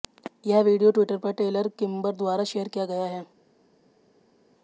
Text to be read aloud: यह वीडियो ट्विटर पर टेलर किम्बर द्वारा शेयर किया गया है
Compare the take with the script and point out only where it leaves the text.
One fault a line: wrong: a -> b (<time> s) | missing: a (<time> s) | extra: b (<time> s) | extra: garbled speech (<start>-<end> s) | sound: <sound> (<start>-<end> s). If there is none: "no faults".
no faults